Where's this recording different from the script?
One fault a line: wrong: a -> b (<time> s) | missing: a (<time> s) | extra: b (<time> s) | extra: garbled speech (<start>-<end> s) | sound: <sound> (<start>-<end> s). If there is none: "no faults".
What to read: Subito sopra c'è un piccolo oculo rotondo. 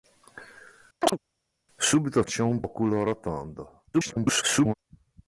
sound: chirp (1.0-1.2 s)
missing: sopra (2.2 s)
missing: piccolo (2.6 s)
extra: garbled speech (3.9-4.7 s)